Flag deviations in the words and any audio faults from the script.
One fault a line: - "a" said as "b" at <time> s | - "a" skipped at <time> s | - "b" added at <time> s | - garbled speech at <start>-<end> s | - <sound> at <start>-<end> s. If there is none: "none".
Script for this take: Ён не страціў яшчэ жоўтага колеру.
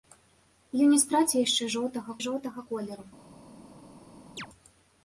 - "жоўтага" added at 2.3 s
- chirp at 4.4-4.5 s